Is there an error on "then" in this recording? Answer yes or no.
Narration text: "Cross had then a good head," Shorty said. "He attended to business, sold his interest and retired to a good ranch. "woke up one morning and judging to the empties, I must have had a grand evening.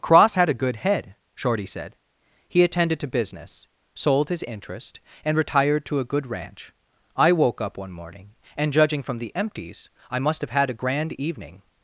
yes